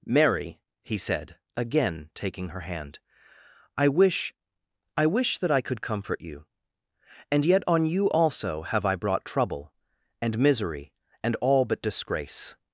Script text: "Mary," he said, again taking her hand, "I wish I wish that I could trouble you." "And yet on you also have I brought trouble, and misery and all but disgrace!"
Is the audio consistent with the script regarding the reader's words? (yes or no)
no